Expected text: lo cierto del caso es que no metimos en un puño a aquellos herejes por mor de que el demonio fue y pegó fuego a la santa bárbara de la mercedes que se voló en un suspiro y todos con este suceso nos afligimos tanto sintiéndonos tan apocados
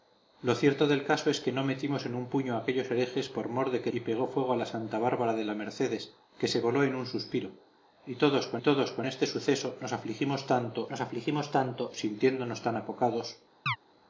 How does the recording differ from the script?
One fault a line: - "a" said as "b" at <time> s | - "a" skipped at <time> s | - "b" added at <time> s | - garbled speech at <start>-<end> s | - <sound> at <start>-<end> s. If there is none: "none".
- "el demonio fue" skipped at 3.9 s
- "todos con" added at 8.6 s
- "nos afligimos tanto" added at 10.9 s
- chirp at 13.7-13.8 s